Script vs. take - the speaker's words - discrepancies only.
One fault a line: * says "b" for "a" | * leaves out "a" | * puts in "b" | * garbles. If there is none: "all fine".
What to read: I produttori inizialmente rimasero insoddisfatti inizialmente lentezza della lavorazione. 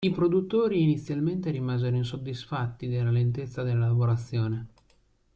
* says "della" for "inizialmente"